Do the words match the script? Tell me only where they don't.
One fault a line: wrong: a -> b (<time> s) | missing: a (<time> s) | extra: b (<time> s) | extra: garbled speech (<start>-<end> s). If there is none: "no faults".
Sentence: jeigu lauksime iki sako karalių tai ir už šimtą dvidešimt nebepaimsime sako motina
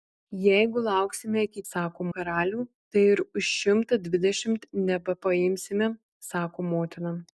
no faults